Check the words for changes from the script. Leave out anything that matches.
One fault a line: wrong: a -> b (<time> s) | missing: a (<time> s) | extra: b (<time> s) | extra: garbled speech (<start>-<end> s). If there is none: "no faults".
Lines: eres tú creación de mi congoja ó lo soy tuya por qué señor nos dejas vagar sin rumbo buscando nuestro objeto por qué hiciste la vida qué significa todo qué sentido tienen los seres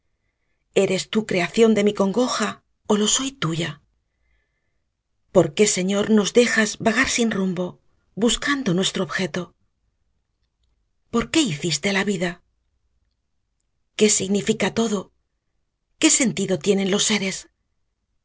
no faults